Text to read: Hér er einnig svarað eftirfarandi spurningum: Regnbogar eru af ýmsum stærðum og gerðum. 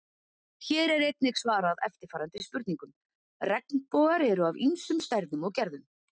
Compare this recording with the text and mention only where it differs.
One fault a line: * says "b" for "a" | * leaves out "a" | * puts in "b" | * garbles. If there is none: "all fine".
all fine